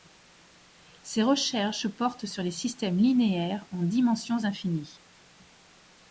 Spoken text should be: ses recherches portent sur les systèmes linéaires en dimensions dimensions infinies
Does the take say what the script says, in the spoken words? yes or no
no